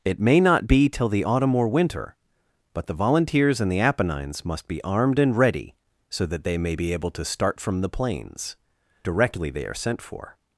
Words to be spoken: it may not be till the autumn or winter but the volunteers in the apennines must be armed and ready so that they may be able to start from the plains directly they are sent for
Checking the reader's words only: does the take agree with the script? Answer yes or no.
yes